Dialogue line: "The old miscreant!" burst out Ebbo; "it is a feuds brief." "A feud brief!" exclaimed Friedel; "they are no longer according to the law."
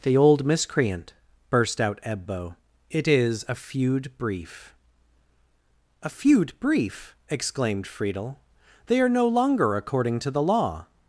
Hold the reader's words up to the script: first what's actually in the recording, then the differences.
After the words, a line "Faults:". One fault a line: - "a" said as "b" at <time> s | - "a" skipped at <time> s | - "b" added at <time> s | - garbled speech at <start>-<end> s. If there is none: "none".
"The old miscreant!" burst out Ebbo; "it is a feud brief." "A feud brief!" exclaimed Friedel; "they are no longer according to the law."
Faults:
- "feuds" said as "feud" at 3.5 s